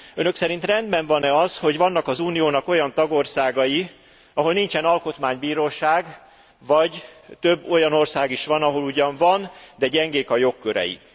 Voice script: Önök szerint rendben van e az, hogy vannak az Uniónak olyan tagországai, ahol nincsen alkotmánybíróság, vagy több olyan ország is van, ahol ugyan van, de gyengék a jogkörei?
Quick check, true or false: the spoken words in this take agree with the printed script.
true